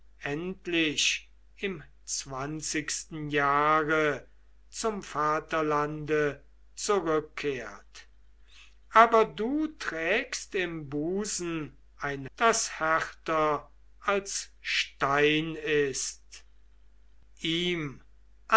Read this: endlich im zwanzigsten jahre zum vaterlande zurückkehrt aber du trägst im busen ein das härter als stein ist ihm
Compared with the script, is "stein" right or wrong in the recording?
right